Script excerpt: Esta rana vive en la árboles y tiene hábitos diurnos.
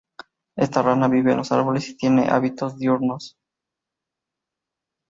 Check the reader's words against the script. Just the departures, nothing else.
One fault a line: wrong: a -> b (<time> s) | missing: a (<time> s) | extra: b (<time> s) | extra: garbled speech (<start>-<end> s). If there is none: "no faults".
wrong: la -> los (1.4 s)